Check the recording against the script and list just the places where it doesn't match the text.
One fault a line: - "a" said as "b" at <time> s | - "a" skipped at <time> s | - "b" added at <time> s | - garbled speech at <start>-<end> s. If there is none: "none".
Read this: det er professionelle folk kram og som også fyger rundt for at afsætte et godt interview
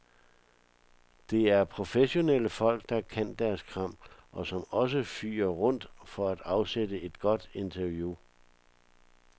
- "der kan deres" added at 2.9 s